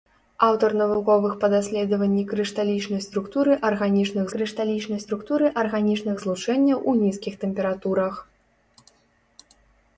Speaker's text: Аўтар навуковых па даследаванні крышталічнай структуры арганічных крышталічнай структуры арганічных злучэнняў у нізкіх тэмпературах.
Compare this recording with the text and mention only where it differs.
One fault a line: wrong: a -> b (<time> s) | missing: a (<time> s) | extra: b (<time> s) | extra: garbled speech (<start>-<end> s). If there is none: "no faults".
no faults